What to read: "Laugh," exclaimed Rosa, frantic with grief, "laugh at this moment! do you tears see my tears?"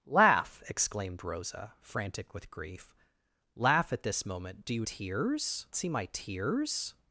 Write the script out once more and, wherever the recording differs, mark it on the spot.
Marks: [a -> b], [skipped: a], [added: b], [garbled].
"Laugh," exclaimed Rosa, frantic with grief, "laugh at this moment! do you tears see my tears?"